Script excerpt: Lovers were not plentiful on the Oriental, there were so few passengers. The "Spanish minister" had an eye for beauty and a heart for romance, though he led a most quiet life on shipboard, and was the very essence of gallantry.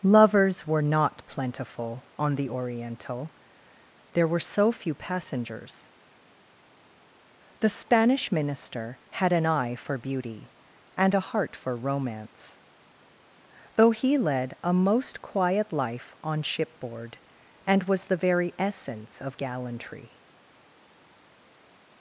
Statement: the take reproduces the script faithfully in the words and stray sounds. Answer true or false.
true